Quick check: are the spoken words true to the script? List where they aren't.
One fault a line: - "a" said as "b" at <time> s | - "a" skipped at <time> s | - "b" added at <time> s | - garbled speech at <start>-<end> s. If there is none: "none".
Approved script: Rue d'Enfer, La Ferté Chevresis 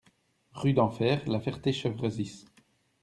none